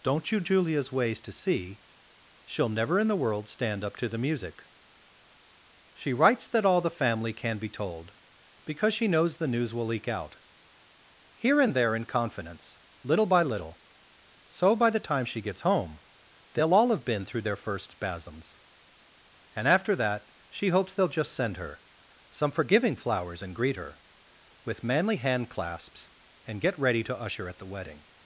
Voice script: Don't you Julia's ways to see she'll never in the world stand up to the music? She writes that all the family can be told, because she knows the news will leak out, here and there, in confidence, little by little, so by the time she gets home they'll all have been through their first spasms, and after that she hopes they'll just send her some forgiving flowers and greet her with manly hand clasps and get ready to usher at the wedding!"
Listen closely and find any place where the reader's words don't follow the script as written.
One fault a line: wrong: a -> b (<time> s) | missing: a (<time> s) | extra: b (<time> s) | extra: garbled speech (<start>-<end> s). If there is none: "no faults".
no faults